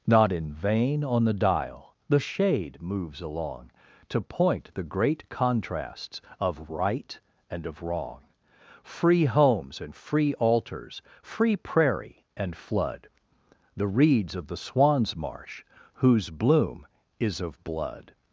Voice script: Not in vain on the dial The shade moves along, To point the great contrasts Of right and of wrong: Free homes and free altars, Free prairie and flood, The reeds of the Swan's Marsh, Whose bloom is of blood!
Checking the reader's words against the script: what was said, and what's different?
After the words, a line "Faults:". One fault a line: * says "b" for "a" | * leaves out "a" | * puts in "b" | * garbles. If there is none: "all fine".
Not in vain on the dial The shade moves along, To point the great contrasts Of right and of wrong: Free homes and free altars, Free prairie and flood, The reeds of the Swan's Marsh, Whose bloom is of blood!
Faults:
all fine